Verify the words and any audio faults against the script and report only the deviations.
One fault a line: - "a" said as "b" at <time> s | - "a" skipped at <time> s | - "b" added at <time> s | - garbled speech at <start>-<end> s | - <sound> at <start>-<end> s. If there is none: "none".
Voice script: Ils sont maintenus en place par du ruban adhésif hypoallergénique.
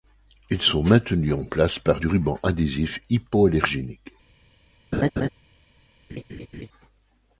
- laugh at 4.9-5.3 s
- laugh at 6.1-6.7 s